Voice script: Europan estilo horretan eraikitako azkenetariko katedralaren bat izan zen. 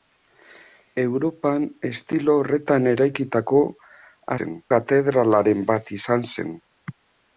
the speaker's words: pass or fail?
fail